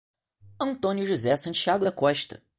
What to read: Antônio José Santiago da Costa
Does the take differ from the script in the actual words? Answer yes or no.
no